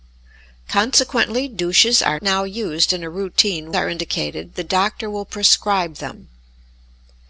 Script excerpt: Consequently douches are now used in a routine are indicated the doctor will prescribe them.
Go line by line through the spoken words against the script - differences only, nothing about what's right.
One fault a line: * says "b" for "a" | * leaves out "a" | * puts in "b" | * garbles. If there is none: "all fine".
all fine